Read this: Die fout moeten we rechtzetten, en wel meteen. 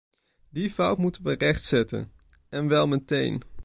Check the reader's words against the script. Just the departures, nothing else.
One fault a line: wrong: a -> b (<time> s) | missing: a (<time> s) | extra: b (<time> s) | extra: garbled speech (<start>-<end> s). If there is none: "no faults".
no faults